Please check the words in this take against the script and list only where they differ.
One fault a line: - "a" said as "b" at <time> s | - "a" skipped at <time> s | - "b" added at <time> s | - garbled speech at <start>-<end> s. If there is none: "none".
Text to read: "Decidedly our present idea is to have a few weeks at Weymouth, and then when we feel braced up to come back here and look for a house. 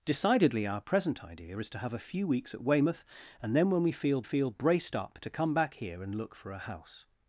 - "feel" added at 4.2 s